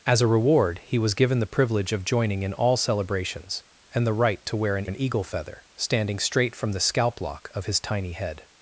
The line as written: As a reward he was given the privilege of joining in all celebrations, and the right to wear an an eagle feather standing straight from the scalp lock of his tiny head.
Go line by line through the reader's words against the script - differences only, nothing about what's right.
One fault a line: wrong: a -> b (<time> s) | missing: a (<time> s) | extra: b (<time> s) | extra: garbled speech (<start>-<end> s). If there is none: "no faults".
no faults